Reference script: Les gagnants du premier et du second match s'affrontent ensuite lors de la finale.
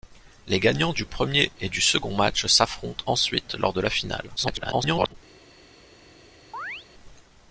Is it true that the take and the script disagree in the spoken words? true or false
true